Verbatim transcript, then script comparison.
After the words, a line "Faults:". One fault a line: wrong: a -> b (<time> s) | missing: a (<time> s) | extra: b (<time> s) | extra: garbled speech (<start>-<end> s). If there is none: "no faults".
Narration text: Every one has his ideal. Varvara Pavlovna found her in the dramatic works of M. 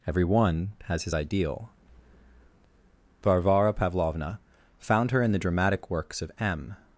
Every one has his ideal. Varvara Pavlovna found her in the dramatic works of M.
Faults:
no faults